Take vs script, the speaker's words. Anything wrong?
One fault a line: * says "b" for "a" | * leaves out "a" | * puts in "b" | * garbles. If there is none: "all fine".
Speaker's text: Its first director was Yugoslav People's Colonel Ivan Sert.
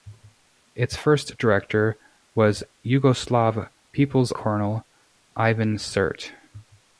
all fine